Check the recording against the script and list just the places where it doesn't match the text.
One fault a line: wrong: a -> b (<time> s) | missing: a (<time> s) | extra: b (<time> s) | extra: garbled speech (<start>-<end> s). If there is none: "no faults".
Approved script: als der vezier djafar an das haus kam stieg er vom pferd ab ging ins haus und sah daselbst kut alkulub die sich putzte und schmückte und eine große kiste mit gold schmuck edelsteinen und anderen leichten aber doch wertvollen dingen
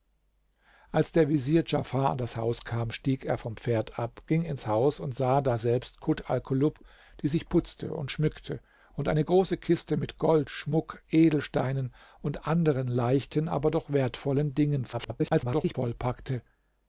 extra: garbled speech (14.9-15.8 s)